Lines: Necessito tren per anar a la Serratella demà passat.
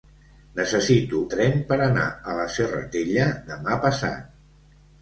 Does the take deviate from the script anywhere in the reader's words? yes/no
no